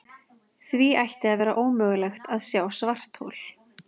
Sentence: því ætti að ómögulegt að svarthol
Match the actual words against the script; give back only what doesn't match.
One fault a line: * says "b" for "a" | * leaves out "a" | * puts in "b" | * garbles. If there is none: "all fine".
* puts in "vera"
* puts in "sjá"